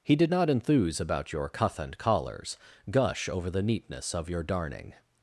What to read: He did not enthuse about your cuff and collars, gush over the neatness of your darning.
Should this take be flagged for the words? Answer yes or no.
no